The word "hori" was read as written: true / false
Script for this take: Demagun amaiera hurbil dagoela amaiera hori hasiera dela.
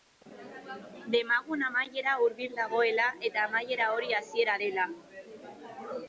true